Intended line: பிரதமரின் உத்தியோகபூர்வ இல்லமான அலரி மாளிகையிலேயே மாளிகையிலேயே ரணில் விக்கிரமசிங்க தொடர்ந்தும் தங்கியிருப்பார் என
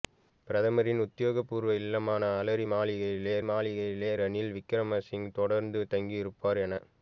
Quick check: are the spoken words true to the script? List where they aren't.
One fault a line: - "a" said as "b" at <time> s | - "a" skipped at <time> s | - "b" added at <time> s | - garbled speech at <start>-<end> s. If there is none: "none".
none